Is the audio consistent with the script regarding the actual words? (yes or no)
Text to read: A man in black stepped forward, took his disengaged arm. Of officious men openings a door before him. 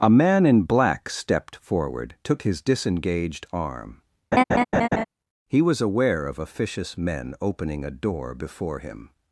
no